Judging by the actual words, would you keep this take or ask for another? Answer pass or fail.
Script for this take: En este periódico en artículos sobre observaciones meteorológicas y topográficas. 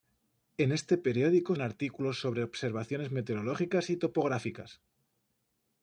pass